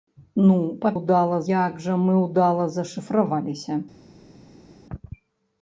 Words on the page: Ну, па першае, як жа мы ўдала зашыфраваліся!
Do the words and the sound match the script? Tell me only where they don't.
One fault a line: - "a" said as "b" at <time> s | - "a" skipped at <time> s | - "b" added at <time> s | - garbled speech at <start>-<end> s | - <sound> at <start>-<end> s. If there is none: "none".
- "першае" said as "ўдала" at 1.0 s